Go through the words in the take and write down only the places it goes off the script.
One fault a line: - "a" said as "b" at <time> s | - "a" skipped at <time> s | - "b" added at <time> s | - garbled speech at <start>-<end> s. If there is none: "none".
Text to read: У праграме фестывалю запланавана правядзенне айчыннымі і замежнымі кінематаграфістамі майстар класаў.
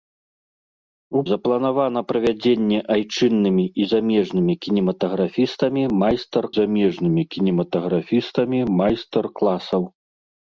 - "праграме фестывалю" skipped at 1.2 s
- "замежнымі кінематаграфістамі майстар" added at 6.6 s